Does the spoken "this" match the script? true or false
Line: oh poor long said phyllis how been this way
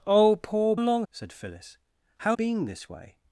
true